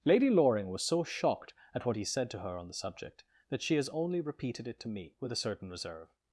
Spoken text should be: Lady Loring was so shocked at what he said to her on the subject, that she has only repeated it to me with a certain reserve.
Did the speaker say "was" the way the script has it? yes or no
yes